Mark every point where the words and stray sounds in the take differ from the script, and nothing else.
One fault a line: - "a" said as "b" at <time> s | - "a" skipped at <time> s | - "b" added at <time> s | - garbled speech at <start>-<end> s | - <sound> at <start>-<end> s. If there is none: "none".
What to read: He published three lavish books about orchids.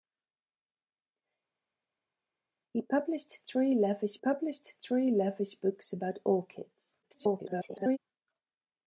- "published three lavish" added at 4.2 s
- garbled speech at 7.0-8.0 s